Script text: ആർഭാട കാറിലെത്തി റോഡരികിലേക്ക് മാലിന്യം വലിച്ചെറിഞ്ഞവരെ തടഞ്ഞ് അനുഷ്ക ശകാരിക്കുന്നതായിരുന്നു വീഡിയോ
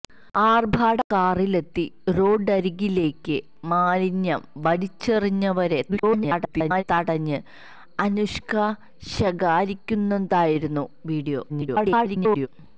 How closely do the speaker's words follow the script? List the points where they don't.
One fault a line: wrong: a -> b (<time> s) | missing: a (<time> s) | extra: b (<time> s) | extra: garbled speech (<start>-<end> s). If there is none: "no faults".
extra: garbled speech (5.9-6.8 s)
extra: garbled speech (11.5-12.5 s)